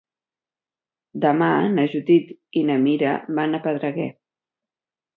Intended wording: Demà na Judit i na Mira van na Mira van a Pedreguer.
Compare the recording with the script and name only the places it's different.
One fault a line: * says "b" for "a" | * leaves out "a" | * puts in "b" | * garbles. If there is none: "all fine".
* leaves out "na Mira van"